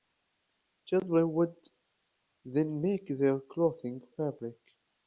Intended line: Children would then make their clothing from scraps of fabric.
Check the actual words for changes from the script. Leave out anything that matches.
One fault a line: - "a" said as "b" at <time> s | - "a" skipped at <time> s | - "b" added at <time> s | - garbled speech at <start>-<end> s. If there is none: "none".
- "from scraps of" skipped at 4.0 s